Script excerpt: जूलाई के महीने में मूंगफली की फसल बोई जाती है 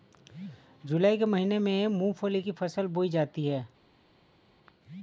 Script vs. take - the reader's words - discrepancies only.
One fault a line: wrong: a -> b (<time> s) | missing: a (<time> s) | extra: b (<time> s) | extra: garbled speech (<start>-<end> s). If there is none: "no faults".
no faults